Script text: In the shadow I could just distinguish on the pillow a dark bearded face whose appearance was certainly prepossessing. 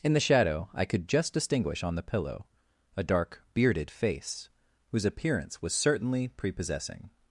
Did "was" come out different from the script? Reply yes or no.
no